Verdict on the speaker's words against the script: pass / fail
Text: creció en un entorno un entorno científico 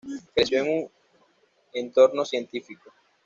fail